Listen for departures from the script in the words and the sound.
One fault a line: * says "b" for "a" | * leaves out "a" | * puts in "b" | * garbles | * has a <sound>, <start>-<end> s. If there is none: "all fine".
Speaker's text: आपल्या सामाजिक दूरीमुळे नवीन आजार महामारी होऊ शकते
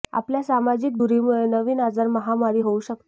all fine